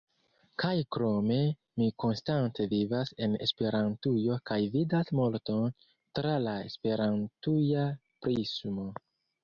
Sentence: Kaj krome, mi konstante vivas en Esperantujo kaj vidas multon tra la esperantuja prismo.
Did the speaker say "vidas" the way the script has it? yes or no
yes